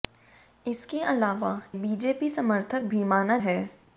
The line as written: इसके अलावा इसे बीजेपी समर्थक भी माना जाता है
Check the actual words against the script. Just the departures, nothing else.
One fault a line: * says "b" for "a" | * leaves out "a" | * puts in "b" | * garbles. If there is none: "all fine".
* leaves out "इसे"
* leaves out "जाता"